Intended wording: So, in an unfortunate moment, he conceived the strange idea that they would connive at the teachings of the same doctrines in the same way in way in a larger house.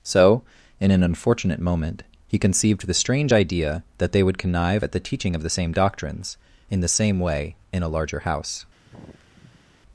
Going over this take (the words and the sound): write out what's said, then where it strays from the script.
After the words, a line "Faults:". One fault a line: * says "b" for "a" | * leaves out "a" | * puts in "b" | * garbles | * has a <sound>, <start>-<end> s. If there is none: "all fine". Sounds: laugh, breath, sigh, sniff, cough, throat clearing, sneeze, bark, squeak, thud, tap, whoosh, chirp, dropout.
So, in an unfortunate moment, he conceived the strange idea that they would connive at the teaching of the same doctrines in the same way in a larger house.
Faults:
* says "teaching" for "teachings"
* leaves out "way in"
* has a sigh, 8.8-9.7 s